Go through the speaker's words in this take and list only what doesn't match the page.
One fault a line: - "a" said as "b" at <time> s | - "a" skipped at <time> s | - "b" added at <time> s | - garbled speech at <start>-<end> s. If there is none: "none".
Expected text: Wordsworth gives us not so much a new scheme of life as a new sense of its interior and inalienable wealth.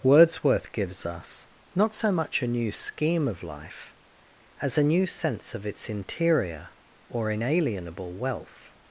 - "and" said as "or" at 7.1 s